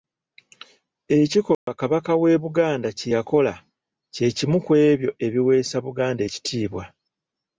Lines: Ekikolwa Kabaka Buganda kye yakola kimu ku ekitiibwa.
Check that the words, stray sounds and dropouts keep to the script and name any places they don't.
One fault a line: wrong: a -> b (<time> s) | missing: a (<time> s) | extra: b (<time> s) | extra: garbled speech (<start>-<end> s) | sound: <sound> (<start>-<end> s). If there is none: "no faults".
sound: dropout (1.5-1.7 s)
extra: w'e (2.2 s)
extra: kye (4.1 s)
extra: ebyo ebiweesa Buganda (4.9 s)